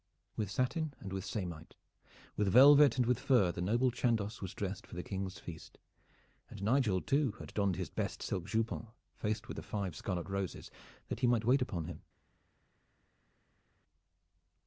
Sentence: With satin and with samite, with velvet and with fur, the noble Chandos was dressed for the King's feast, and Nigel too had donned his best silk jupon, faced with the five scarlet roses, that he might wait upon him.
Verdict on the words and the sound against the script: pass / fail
pass